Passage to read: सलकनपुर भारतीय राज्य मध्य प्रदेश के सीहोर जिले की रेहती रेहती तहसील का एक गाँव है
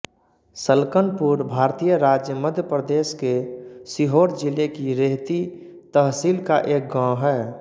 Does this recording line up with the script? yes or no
no